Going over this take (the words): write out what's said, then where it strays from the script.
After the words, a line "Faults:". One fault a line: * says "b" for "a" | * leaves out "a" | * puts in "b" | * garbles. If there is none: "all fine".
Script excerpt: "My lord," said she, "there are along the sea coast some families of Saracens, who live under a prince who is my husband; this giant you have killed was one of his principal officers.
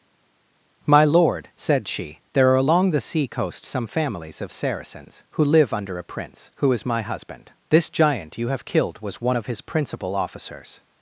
"My lord," said she, "there are along the sea coast some families of Saracens, who live under a prince who is my husband; this giant you have killed was one of his principal officers.
Faults:
all fine